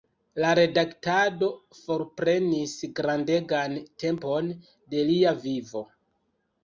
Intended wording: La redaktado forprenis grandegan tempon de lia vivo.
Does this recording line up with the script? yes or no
yes